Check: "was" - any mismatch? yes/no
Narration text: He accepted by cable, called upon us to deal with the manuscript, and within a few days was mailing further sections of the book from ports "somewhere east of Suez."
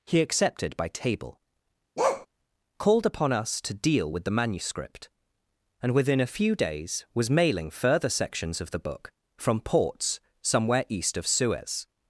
no